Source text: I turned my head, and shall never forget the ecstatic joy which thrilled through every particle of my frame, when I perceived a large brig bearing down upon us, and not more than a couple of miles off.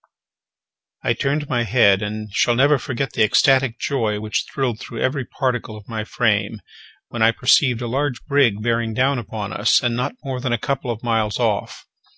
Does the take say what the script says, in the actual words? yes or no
yes